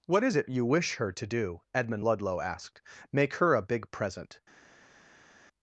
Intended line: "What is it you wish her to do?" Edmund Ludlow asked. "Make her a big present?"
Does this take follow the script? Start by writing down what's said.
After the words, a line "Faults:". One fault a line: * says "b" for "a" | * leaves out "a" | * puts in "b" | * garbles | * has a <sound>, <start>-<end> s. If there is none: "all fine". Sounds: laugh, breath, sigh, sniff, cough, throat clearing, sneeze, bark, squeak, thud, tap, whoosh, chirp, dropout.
"What is it you wish her to do?" Edmund Ludlow asked. "Make her a big present?"
Faults:
all fine